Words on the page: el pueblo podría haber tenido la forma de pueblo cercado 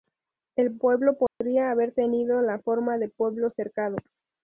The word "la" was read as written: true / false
true